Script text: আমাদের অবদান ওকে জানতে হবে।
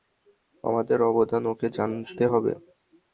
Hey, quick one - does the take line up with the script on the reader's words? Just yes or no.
yes